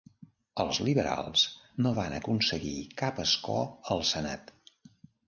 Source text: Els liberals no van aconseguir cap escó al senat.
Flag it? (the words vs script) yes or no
no